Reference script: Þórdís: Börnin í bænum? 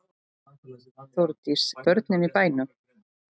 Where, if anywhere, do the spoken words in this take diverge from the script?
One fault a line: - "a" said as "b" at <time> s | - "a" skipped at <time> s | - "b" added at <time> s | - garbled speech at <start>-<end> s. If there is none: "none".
none